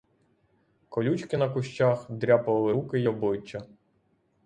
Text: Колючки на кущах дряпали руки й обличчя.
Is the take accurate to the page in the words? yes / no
yes